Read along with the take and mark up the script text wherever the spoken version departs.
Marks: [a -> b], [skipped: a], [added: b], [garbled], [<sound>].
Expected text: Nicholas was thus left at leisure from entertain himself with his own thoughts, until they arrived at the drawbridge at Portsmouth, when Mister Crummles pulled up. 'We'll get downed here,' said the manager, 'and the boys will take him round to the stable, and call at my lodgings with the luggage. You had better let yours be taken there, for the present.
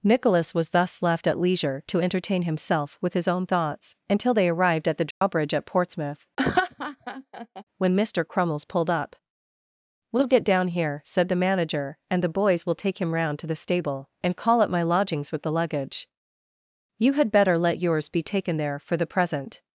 Nicholas was thus left at leisure [from -> to] entertain himself with his own thoughts, until they arrived at the drawbridge [dropout] at Portsmouth, [laugh] when Mister Crummles pulled up. 'We'll get [downed -> down] here,' said the manager, 'and the boys will take him round to the stable, and call at my lodgings with the luggage. You had better let yours be taken there, for the present.